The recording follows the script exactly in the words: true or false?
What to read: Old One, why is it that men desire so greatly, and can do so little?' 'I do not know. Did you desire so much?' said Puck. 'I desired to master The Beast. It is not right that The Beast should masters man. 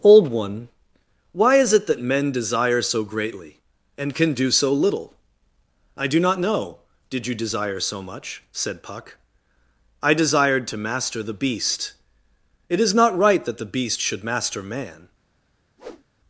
false